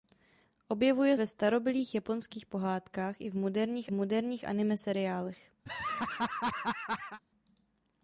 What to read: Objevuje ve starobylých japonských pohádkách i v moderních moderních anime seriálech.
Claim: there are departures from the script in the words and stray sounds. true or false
true